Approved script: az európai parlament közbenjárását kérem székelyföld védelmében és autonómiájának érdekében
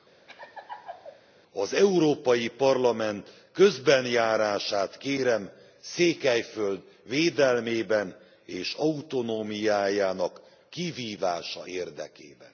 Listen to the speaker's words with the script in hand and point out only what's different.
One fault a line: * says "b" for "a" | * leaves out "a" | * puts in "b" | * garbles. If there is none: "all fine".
* puts in "kivívása"